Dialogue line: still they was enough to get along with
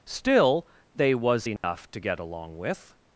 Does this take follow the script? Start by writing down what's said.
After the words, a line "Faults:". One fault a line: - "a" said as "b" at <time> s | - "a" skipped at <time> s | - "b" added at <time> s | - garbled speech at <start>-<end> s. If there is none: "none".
still they was enough to get along with
Faults:
none